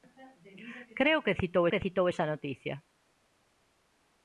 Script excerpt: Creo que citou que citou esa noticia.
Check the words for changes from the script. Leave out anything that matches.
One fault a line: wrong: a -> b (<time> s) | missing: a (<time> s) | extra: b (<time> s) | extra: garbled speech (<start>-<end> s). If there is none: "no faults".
no faults